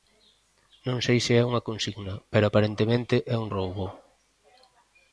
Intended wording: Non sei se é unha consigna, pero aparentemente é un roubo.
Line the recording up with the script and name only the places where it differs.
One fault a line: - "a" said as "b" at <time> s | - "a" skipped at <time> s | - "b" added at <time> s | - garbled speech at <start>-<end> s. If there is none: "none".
none